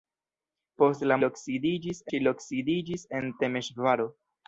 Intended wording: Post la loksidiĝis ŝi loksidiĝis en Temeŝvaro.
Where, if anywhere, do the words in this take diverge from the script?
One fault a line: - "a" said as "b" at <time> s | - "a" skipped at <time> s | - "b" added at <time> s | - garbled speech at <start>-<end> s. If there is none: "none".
none